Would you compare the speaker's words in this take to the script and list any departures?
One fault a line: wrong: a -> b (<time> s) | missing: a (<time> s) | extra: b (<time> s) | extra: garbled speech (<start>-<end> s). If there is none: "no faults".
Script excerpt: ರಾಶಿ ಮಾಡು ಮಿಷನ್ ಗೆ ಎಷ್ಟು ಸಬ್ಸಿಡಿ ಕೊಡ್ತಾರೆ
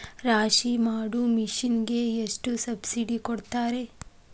no faults